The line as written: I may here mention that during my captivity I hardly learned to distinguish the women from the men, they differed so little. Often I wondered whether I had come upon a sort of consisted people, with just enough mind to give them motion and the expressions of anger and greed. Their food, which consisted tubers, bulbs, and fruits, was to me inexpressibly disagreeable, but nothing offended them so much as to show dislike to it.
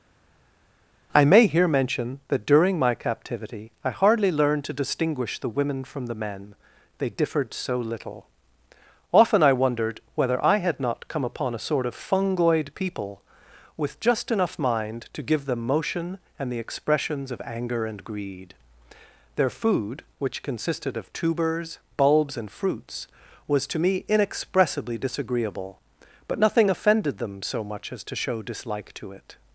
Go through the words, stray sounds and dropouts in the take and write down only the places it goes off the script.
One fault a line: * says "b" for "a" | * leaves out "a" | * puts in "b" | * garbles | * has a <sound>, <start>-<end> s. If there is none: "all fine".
* puts in "not"
* says "fungoid" for "consisted"
* puts in "of"